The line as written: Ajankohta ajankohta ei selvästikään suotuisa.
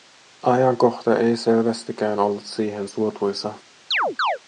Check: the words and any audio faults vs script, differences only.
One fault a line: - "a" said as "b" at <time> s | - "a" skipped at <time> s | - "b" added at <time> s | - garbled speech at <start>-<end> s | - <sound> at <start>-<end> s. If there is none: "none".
- "ajankohta" skipped at 1.2 s
- "ollut siihen" added at 2.2 s
- chirp at 3.9-4.4 s